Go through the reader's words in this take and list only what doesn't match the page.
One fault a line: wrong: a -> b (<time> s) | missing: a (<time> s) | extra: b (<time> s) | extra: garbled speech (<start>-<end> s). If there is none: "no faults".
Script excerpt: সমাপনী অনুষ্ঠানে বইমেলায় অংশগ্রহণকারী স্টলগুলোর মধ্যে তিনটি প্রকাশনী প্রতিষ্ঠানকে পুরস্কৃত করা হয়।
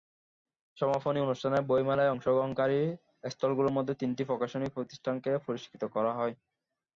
no faults